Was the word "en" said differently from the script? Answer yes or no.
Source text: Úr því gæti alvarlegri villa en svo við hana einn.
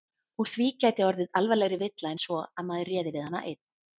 no